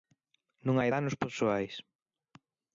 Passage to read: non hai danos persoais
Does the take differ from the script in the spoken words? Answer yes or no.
no